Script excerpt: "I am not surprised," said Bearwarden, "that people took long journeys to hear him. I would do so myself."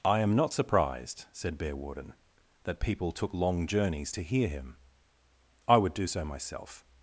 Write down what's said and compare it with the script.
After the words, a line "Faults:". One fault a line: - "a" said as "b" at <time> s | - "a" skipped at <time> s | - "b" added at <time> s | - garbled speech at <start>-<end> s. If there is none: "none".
"I am not surprised," said Bearwarden, "that people took long journeys to hear him. I would do so myself."
Faults:
none